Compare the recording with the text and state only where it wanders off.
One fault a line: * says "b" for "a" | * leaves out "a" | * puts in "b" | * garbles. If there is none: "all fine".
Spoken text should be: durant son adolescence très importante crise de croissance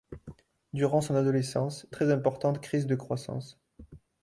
all fine